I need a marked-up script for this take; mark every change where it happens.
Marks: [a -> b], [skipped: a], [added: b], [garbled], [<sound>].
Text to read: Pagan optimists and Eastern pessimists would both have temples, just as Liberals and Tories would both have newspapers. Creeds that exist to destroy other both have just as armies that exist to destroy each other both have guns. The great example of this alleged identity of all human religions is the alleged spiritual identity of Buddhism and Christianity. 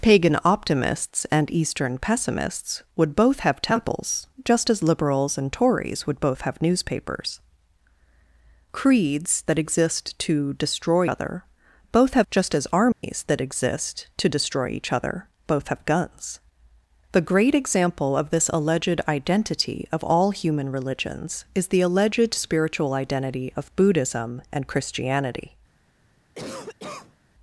Pagan optimists and Eastern pessimists would both have temples, just as Liberals and Tories would both have newspapers. Creeds that exist to destroy other both have just as armies [dropout] that exist to destroy each other both have guns. The great example of this alleged identity of all human religions is the alleged spiritual identity of Buddhism and Christianity. [cough]